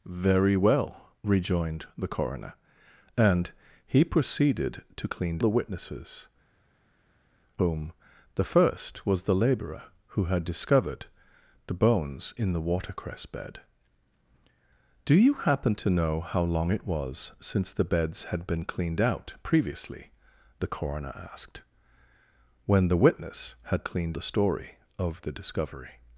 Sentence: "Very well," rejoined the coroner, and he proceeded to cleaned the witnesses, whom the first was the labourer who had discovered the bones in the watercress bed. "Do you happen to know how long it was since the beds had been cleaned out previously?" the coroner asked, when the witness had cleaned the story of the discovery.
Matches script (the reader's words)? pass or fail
pass